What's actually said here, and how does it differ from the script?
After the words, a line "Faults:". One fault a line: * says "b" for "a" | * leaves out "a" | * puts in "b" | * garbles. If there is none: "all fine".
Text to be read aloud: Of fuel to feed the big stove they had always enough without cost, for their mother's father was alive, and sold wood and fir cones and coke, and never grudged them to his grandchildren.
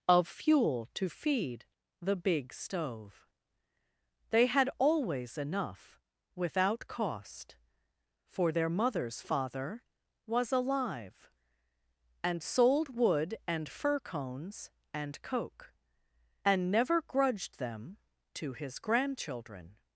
Of fuel to feed the big stove they had always enough without cost, for their mother's father was alive, and sold wood and fir cones and coke, and never grudged them to his grandchildren.
Faults:
all fine